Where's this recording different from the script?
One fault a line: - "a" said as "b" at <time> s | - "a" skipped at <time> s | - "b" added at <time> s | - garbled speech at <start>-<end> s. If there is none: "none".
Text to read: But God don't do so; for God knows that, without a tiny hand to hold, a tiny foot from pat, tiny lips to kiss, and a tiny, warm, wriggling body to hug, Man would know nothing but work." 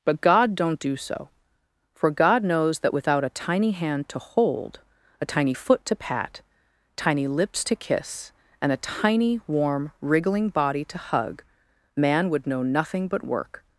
- "from" said as "to" at 5.8 s